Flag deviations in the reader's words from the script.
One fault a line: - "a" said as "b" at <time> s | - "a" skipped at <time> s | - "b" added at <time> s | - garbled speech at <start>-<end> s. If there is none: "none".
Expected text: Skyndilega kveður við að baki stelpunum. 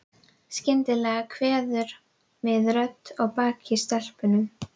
- "rödd" added at 2.8 s